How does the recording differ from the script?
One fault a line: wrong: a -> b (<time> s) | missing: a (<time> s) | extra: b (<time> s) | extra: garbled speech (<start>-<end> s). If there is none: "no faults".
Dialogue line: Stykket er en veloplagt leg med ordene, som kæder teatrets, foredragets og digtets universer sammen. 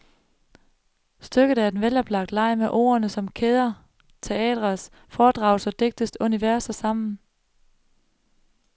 no faults